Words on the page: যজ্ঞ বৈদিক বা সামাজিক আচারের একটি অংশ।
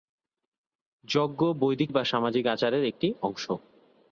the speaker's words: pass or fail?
pass